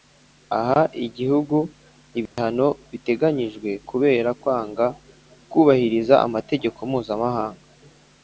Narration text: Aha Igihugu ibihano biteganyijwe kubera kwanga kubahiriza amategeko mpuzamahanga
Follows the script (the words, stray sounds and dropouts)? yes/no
no